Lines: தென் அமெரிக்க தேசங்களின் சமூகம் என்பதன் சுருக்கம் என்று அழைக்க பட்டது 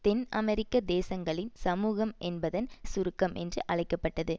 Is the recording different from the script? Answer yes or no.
no